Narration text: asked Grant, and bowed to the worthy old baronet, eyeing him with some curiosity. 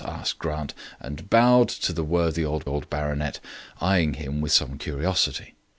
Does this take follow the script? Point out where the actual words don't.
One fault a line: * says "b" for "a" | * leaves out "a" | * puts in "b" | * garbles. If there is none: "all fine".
* puts in "old"